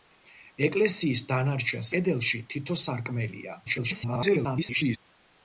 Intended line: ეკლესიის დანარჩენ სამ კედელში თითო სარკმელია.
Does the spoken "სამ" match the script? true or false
false